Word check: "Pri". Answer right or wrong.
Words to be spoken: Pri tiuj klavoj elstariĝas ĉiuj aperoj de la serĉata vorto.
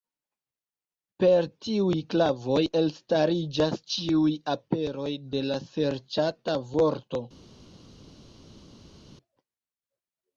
wrong